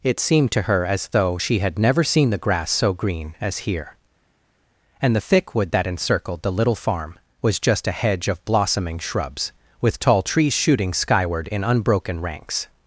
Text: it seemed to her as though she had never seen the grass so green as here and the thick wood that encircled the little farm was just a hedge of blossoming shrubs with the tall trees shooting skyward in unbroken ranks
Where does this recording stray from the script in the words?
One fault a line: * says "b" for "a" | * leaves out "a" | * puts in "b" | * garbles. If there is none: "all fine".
* leaves out "the"